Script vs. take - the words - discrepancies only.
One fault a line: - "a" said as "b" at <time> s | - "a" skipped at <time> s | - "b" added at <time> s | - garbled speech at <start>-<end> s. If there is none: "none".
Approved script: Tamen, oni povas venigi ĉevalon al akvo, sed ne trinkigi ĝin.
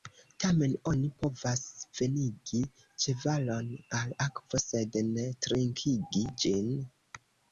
none